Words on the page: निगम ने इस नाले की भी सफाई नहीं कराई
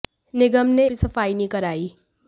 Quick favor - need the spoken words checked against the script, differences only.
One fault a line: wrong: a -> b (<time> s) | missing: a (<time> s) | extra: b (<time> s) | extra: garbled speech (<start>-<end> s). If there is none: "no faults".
missing: इस नाले की (0.9 s)